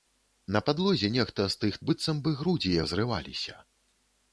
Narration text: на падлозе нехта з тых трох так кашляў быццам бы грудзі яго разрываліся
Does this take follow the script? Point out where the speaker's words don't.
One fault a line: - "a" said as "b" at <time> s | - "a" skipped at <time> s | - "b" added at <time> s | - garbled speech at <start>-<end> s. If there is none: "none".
- "трох так кашляў" skipped at 1.8 s
- "яго" skipped at 2.8 s